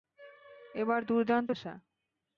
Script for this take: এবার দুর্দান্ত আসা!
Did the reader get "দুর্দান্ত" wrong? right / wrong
right